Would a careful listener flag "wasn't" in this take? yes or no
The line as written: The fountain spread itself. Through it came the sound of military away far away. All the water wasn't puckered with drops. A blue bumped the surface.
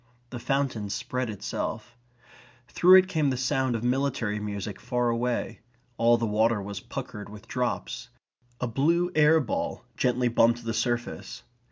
yes